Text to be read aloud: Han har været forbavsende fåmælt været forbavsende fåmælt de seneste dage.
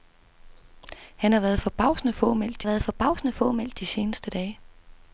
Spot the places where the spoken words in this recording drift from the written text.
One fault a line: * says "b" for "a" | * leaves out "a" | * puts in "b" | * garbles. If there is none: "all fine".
all fine